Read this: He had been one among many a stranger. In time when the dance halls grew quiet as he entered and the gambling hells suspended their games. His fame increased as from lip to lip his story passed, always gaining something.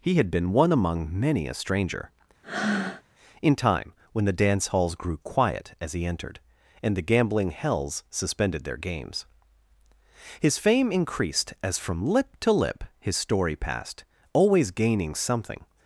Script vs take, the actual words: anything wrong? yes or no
no